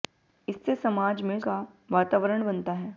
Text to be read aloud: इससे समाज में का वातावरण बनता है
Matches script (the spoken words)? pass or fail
pass